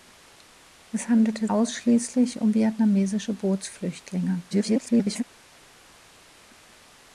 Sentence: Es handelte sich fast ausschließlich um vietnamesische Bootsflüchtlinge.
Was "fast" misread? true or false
true